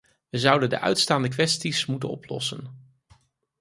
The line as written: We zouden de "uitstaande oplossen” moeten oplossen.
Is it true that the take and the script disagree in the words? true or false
true